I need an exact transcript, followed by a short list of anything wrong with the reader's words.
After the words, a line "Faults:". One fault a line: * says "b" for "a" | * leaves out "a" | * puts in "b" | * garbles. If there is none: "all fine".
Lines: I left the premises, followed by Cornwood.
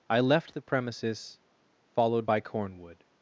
I left the premises, followed by Cornwood.
Faults:
all fine